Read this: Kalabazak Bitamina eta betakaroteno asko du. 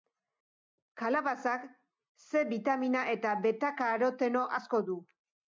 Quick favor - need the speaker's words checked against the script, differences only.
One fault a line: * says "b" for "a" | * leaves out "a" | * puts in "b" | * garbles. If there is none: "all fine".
* puts in "C"